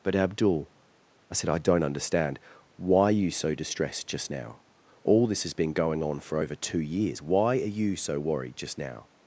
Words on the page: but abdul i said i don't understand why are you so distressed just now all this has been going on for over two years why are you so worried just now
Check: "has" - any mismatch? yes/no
no